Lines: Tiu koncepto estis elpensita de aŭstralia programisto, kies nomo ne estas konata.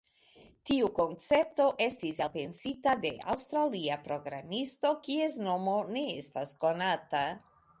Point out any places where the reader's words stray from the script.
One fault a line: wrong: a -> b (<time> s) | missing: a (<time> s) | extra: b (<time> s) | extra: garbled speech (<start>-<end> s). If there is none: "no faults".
no faults